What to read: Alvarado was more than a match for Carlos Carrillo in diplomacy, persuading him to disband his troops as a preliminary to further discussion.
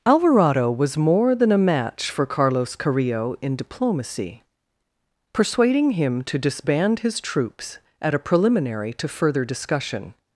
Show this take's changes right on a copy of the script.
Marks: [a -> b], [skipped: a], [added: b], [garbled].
Alvarado was more than a match for Carlos Carrillo in diplomacy, persuading him to disband his troops [as -> at] a preliminary to further discussion.